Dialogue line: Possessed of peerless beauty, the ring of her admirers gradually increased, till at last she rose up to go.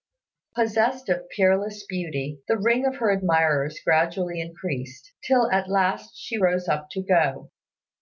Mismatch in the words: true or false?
false